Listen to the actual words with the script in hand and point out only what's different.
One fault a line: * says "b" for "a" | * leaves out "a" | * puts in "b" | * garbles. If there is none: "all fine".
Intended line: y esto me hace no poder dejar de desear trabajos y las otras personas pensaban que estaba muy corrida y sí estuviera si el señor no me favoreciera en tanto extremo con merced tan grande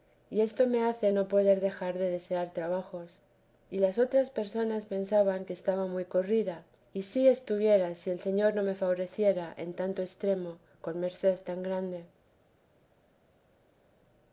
all fine